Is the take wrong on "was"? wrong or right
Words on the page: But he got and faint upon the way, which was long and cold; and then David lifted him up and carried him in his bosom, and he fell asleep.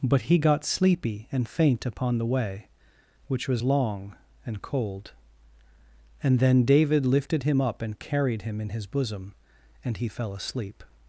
right